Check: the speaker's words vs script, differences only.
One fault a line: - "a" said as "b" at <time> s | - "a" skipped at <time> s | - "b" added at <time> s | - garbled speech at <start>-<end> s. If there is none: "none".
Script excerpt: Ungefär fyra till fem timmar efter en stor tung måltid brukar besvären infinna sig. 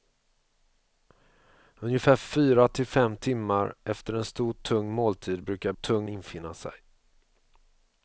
- "besvären" said as "tung" at 5.7 s